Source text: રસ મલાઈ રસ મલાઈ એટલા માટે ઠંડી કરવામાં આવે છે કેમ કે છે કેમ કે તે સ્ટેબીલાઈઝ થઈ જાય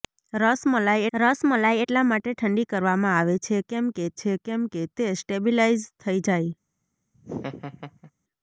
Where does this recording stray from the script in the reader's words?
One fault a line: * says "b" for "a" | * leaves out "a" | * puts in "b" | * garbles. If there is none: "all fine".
all fine